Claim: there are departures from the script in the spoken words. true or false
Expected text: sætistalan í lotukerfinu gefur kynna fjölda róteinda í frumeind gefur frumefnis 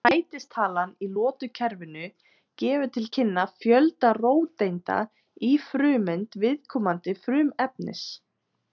true